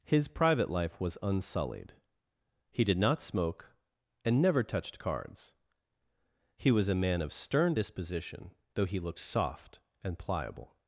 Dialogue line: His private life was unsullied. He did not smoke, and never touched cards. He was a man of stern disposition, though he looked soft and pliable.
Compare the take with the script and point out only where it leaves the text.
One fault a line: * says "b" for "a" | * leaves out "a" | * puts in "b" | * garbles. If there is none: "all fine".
all fine